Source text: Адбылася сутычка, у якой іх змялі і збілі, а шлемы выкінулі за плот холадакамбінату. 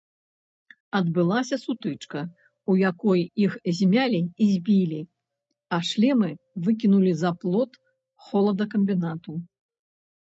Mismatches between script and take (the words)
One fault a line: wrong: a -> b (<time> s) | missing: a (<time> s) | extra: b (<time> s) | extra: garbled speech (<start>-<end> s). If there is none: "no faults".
no faults